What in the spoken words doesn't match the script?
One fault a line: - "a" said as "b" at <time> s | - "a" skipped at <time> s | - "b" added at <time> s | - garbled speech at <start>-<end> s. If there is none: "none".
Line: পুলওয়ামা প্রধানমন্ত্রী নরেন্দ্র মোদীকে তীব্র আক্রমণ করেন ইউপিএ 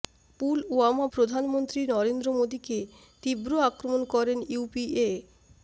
none